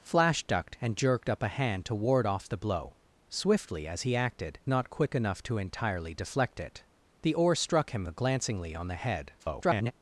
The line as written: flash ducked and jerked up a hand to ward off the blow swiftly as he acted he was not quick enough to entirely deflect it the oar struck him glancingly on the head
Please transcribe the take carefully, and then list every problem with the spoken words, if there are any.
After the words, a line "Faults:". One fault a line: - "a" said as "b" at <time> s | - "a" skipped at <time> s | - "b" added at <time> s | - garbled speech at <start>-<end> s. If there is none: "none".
flash ducked and jerked up a hand to ward off the blow swiftly as he acted not quick enough to entirely deflect it the oar struck him glancingly on the head [garbled]
Faults:
- "he was" skipped at 4.6 s
- garbled speech at 9.4-9.9 s